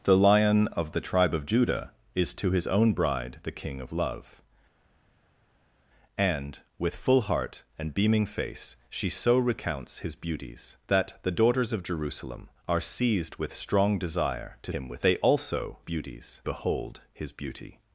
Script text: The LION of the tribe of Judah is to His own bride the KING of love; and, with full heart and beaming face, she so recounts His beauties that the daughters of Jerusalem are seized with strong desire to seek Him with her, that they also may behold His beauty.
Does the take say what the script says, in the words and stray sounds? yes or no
no